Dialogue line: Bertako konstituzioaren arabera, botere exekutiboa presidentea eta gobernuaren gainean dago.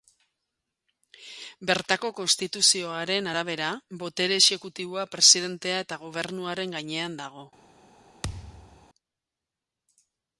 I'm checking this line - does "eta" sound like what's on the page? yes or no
yes